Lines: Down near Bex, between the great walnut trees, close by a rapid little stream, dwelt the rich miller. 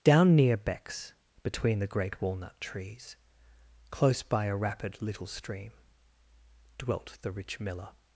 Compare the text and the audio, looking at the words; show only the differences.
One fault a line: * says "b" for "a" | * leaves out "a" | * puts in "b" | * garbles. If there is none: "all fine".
all fine